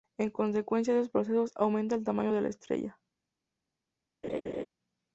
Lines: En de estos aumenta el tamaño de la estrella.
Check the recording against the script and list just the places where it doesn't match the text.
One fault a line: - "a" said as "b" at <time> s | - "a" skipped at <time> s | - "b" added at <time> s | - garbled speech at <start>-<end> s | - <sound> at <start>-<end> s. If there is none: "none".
- "consecuencia" added at 0.3 s
- "procesos" added at 1.1 s
- laugh at 4.2-4.7 s